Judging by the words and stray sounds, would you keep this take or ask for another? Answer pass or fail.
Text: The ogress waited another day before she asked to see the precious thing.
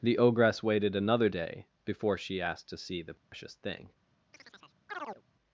fail